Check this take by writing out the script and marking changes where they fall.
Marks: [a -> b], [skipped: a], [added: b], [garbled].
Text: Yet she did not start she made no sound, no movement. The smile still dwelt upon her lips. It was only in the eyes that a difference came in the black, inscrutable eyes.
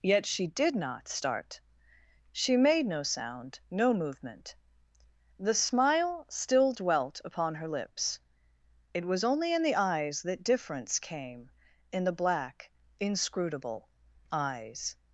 Yet she did not start she made no sound, no movement. The smile still dwelt upon her lips. It was only in the eyes that [skipped: a] difference came in the black, inscrutable eyes.